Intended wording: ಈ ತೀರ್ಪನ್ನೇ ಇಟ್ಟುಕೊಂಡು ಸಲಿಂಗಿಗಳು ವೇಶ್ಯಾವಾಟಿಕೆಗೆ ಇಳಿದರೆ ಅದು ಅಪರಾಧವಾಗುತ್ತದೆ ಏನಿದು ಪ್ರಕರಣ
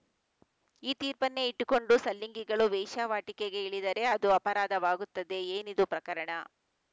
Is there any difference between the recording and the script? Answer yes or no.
no